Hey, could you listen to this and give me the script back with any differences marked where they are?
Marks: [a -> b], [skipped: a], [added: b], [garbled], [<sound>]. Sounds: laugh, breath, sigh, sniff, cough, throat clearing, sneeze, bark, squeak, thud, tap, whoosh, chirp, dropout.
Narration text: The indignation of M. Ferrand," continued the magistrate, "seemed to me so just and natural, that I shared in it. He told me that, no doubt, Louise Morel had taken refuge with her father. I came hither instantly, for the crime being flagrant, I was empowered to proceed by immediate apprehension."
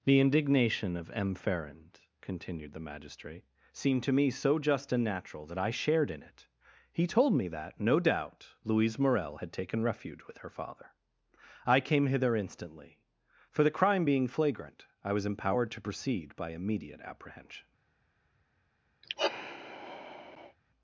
The indignation of M. Ferrand," continued the magistrate, "seemed to me so just and natural, that I shared in it. He told me that, no doubt, Louise Morel had taken refuge with her father. I came hither instantly, for the crime being flagrant, I was empowered to proceed by immediate apprehension." [sigh]